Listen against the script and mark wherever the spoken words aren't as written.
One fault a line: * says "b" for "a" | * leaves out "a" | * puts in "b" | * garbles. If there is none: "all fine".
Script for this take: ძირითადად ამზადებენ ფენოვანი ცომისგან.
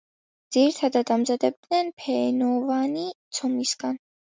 all fine